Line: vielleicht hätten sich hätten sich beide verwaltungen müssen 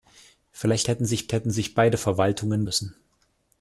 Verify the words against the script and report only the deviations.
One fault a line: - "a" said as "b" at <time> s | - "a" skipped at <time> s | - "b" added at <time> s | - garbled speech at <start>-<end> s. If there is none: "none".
none